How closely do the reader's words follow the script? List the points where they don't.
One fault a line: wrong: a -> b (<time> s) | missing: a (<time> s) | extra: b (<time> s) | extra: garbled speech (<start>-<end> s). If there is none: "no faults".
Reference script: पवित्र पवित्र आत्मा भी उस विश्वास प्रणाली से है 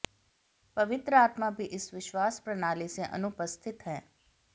missing: पवित्र (1.1 s)
wrong: उस -> इस (1.8 s)
extra: अनुपस्थित (3.0 s)